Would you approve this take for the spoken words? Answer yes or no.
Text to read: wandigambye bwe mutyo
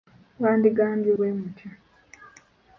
yes